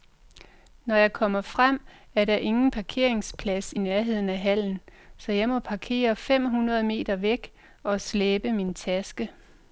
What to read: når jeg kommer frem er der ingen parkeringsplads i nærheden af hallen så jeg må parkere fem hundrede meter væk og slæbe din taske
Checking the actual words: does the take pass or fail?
fail